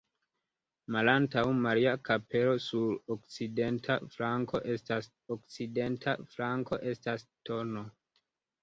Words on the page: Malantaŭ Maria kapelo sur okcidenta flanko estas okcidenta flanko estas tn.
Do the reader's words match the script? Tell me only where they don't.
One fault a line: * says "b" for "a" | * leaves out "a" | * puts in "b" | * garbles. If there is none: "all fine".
all fine